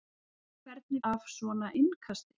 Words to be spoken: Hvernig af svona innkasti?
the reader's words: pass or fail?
pass